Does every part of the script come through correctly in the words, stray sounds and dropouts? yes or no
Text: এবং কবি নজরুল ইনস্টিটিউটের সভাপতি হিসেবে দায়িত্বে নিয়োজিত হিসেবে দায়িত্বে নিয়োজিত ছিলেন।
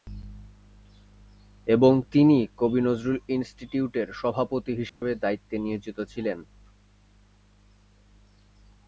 no